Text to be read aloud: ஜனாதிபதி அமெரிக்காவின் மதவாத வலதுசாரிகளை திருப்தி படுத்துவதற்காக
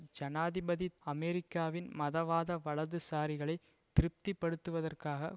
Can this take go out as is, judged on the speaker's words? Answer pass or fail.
pass